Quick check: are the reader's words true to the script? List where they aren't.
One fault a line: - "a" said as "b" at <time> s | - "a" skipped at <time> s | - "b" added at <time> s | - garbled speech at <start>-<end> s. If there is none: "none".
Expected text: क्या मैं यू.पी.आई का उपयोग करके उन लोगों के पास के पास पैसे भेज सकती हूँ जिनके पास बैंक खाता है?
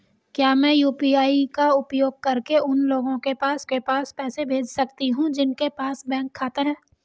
none